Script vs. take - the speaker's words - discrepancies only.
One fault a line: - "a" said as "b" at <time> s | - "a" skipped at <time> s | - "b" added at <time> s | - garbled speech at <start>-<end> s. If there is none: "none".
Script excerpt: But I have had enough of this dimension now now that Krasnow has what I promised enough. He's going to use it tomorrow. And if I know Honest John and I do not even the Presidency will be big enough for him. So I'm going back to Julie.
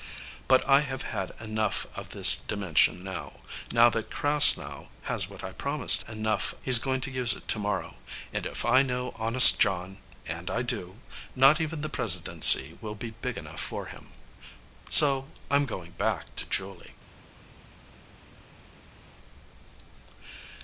none